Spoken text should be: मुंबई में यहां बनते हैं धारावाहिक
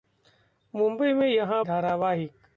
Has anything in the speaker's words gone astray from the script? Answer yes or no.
yes